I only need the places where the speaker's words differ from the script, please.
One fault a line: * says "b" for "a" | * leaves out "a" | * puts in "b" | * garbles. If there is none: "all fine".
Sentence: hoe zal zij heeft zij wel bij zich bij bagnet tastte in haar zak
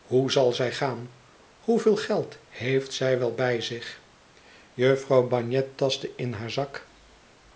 * puts in "gaan hoeveel geld"
* says "jufvrouw" for "bij"